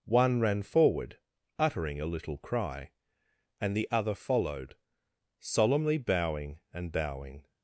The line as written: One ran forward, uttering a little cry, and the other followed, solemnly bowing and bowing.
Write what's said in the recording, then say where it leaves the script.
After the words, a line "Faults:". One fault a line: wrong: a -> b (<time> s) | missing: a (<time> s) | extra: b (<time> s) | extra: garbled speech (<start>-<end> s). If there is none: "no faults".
One ran forward, uttering a little cry, and the other followed, solemnly bowing and bowing.
Faults:
no faults